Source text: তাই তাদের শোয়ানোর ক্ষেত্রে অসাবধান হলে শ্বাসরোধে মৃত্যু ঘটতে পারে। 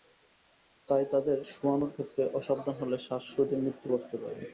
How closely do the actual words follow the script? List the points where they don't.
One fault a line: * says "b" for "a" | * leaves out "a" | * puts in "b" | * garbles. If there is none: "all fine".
all fine